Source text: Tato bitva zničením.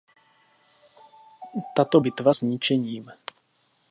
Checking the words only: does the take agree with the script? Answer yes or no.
yes